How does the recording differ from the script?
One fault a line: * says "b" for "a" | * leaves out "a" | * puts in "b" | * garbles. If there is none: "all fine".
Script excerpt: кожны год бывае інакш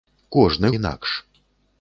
* leaves out "год бывае"